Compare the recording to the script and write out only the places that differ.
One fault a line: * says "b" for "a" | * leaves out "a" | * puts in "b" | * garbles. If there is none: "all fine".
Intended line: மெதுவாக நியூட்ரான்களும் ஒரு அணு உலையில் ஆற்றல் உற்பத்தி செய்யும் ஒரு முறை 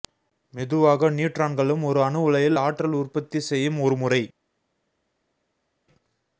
all fine